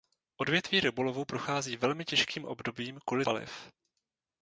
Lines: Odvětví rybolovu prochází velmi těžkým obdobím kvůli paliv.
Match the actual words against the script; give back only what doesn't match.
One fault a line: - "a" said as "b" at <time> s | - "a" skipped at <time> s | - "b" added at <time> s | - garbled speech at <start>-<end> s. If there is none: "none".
none